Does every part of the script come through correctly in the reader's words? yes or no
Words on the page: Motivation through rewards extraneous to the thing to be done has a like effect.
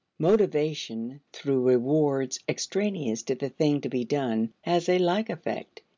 yes